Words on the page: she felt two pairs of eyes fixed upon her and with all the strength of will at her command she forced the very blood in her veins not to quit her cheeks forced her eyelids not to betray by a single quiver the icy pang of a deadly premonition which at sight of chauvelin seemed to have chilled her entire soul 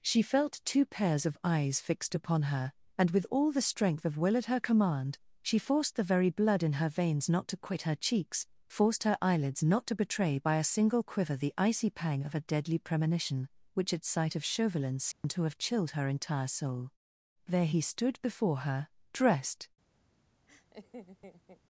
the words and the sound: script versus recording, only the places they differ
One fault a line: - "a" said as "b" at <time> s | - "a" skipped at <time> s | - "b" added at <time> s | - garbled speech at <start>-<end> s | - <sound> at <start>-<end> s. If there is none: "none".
- dropout at 15.1-15.2 s
- "there he stood before her dressed" added at 17.4 s
- laugh at 20.5-21.6 s